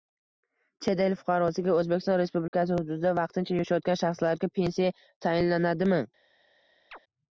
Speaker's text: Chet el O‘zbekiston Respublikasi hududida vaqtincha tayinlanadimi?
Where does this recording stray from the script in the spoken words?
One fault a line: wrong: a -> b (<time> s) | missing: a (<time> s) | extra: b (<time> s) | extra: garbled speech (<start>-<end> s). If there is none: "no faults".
extra: fuqarosiga (1.2 s)
extra: yashayotgan shaxslarga pensiya (3.6 s)